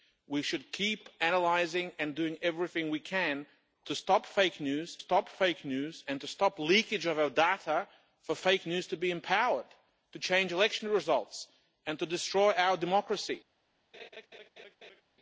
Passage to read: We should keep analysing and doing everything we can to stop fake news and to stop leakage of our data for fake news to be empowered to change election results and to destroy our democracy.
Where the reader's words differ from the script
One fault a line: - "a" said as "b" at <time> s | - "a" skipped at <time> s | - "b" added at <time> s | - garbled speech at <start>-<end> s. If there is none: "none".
- "stop fake news" added at 5.0 s